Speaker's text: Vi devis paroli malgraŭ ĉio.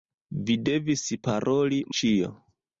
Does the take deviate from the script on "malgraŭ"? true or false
true